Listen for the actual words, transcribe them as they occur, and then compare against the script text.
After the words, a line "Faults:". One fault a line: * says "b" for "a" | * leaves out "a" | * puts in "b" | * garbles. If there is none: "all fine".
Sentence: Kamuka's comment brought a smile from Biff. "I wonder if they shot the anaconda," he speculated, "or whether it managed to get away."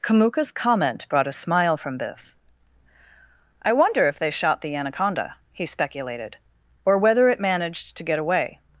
Kamuka's comment brought a smile from Biff. "I wonder if they shot the anaconda," he speculated, "or whether it managed to get away."
Faults:
all fine